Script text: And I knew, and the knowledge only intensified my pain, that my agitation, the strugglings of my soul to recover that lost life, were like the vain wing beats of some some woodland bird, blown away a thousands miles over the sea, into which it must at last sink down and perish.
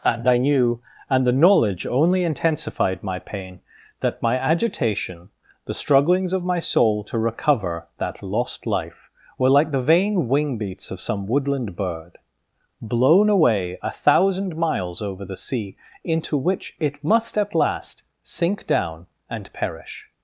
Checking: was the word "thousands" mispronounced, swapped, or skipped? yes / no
yes